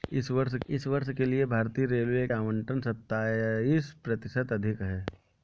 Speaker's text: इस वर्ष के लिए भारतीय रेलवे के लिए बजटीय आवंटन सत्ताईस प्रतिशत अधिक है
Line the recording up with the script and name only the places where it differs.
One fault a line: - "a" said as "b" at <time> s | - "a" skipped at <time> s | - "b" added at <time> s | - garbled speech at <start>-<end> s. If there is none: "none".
- "इस वर्ष" added at 0.7 s
- "के लिए बजटीय" skipped at 2.3 s